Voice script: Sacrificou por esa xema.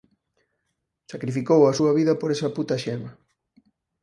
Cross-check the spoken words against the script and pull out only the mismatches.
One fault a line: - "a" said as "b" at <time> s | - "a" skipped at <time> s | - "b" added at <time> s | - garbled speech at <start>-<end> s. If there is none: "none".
- "a súa vida" added at 1.6 s
- "puta" added at 2.6 s